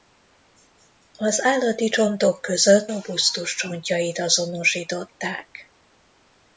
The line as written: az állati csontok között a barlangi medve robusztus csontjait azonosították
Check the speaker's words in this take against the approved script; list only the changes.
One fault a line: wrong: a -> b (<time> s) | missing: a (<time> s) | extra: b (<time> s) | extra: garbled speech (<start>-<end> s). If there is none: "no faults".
missing: a barlangi medve (2.9 s)